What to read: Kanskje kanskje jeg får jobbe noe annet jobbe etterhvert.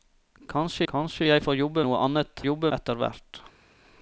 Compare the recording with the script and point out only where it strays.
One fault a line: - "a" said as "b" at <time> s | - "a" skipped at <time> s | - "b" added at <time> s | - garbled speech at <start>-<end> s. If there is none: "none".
none